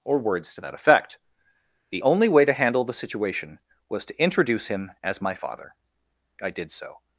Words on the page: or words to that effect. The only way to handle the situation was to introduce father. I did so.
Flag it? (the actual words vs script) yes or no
yes